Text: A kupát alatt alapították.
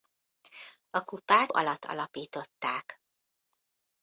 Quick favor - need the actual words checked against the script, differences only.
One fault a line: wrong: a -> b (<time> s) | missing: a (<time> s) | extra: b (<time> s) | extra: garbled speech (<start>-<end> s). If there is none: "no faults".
no faults